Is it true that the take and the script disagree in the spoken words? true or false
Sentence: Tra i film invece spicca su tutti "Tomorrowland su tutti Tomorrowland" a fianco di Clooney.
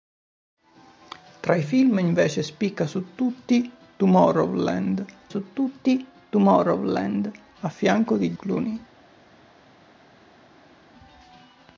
false